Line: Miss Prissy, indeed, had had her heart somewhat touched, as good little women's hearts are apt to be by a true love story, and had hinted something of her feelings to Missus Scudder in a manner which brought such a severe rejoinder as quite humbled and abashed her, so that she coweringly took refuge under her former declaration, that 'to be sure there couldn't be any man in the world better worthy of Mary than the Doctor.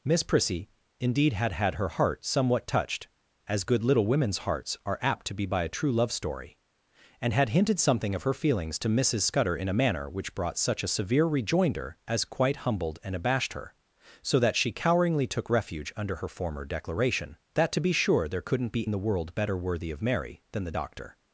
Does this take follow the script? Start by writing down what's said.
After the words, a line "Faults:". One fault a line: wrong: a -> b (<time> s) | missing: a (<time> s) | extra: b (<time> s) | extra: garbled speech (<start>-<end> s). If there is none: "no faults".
Miss Prissy, indeed, had had her heart somewhat touched, as good little women's hearts are apt to be by a true love story, and had hinted something of her feelings to Missus Scudder in a manner which brought such a severe rejoinder as quite humbled and abashed her, so that she coweringly took refuge under her former declaration, that 'to be sure there couldn't be in the world better worthy of Mary than the Doctor.
Faults:
missing: any man (18.9 s)